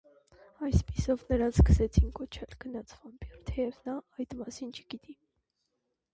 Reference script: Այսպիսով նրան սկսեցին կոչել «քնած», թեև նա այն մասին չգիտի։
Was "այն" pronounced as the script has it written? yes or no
no